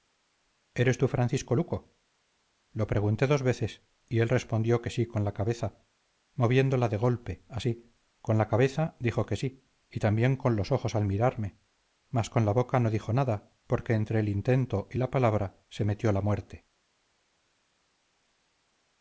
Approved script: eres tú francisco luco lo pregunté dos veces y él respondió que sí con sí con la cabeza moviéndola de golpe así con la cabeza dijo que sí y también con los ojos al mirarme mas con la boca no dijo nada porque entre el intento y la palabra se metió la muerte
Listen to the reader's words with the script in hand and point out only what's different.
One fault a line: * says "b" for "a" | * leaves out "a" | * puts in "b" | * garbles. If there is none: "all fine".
* leaves out "sí con"